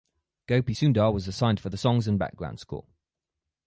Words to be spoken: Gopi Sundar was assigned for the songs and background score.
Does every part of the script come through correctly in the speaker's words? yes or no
yes